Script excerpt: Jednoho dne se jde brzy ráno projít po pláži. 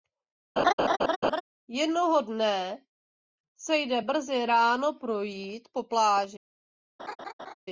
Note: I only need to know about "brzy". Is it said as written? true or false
true